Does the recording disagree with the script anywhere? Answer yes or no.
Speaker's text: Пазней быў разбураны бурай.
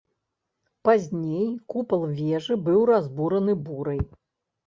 yes